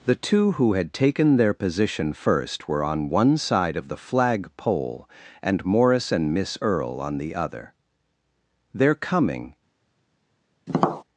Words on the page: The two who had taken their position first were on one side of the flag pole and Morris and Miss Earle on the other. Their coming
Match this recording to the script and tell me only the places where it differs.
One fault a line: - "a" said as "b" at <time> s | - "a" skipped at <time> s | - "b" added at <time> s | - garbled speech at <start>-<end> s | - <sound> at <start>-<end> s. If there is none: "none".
- tap at 10.7-11.0 s